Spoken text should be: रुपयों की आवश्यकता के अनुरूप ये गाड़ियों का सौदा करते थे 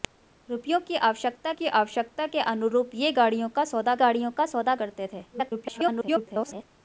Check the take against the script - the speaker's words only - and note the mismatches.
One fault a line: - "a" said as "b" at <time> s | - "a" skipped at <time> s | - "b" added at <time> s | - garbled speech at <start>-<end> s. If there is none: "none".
- "की आवश्यकता" added at 1.5 s
- "गाड़ियों का सौदा" added at 4.0 s
- garbled speech at 5.3-6.6 s